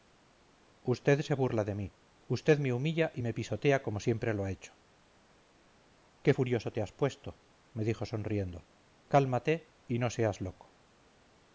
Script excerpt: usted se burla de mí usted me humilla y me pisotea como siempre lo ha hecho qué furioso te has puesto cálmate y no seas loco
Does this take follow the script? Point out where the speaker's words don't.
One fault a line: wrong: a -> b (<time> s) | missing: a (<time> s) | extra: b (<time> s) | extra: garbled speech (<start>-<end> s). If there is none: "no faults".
extra: me dijo sonriendo (7.7 s)